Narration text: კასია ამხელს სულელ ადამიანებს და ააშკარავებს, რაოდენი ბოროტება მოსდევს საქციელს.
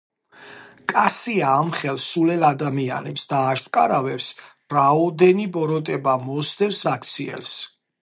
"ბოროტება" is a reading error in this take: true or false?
false